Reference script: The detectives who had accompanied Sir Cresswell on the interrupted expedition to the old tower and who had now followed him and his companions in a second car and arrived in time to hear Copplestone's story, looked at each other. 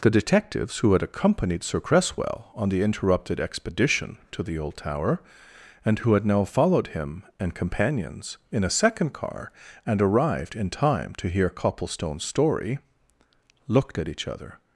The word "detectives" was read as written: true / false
true